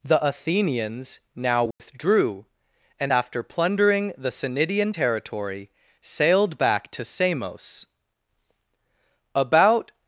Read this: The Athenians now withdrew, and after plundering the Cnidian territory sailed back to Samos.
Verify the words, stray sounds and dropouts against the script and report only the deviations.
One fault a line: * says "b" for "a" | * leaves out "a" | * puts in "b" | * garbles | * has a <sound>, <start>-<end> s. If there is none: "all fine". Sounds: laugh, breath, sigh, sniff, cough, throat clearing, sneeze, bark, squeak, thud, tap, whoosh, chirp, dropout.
* has a dropout, 1.7-1.8 s
* puts in "About"